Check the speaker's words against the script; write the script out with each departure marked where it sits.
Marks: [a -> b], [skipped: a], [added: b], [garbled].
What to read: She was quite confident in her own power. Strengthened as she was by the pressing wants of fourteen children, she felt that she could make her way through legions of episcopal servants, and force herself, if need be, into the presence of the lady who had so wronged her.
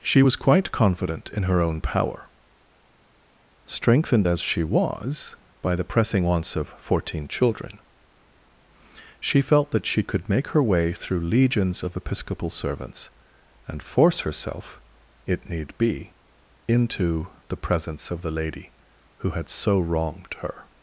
She was quite confident in her own power. Strengthened as she was by the pressing wants of fourteen children, she felt that she could make her way through legions of episcopal servants, and force herself, [if -> it] need be, into the presence of the lady who had so wronged her.